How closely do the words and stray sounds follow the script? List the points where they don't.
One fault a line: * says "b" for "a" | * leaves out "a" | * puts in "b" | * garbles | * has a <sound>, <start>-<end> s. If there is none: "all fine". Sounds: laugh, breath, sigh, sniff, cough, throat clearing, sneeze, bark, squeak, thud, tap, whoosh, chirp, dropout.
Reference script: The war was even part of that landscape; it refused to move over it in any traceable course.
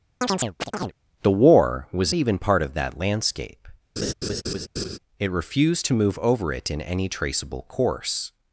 * has a chirp, 0.2-0.9 s
* has a laugh, 4.0-5.0 s